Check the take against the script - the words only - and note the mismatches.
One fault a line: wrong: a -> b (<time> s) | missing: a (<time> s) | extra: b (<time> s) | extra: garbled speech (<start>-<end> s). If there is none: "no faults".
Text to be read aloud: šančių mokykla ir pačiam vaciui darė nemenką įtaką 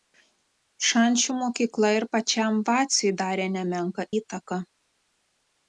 no faults